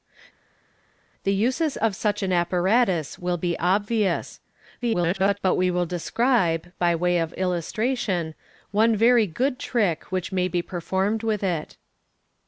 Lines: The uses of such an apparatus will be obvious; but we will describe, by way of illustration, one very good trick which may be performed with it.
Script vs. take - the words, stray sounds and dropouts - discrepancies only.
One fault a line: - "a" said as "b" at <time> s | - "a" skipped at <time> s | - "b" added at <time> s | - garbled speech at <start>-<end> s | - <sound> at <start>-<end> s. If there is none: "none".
- garbled speech at 4.8-5.4 s